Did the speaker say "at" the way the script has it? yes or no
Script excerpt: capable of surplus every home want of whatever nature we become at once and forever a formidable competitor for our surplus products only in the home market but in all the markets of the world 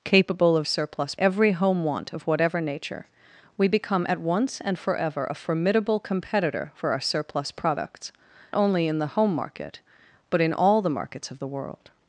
yes